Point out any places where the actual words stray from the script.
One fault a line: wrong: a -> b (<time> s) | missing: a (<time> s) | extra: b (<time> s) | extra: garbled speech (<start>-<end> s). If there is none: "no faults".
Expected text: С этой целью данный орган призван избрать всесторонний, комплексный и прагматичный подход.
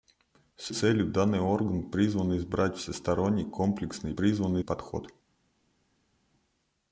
missing: этой (0.7 s)
wrong: прагматичный -> призван (4.2 s)